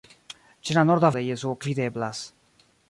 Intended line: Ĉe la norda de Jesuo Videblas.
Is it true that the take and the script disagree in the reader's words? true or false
false